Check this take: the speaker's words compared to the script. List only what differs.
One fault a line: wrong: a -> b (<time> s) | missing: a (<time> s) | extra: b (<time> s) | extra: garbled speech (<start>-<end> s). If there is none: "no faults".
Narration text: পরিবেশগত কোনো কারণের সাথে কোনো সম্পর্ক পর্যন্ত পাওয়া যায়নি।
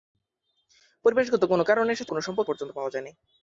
no faults